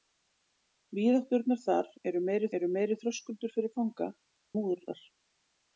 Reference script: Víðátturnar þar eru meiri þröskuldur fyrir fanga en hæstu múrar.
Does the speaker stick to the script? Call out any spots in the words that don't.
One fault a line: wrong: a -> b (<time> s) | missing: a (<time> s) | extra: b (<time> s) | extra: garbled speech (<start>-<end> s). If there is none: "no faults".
extra: eru meiri (2.6 s)
missing: en hæstu (4.1 s)